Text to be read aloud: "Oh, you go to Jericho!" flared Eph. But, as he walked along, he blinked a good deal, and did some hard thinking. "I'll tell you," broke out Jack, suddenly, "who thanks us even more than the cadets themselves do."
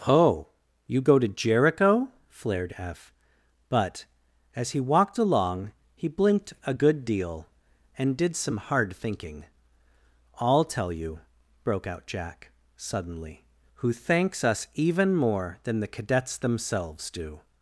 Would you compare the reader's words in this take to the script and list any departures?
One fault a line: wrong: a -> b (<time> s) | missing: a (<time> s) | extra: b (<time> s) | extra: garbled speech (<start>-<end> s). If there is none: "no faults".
no faults